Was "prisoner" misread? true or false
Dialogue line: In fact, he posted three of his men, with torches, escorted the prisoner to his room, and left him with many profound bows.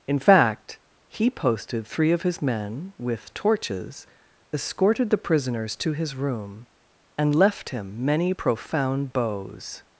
true